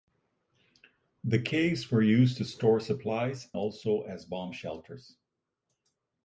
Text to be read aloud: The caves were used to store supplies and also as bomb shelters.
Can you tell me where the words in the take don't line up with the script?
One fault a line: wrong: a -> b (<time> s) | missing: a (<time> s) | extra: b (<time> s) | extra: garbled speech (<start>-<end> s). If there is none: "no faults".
missing: and (3.5 s)